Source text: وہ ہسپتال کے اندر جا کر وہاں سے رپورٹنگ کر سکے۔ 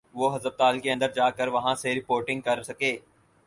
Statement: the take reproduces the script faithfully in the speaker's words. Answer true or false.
true